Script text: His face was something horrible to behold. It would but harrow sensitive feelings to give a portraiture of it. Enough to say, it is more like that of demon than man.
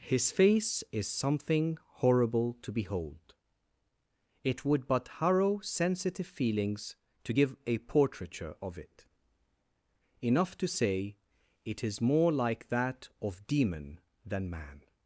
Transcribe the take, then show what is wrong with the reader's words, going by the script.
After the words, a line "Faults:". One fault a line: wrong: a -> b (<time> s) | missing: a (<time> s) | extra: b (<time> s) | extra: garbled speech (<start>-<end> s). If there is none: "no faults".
His face is something horrible to behold. It would but harrow sensitive feelings to give a portraiture of it. Enough to say, it is more like that of demon than man.
Faults:
wrong: was -> is (0.9 s)